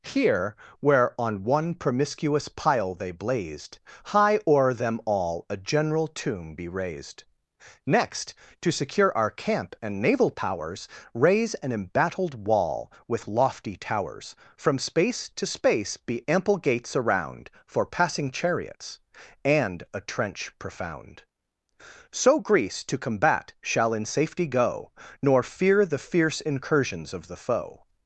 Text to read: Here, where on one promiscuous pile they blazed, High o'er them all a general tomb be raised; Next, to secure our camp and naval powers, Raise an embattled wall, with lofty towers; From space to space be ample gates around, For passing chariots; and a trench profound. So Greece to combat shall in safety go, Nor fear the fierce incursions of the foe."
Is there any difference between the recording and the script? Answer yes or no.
no